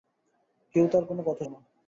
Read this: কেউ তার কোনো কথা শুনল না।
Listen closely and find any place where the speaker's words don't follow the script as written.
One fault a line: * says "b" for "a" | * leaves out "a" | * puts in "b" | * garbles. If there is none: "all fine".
* leaves out "শুনল"